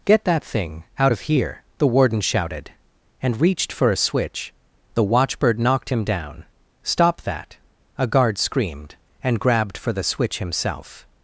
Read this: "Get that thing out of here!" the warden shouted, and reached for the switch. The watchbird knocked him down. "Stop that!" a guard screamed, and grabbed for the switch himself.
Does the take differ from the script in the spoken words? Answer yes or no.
yes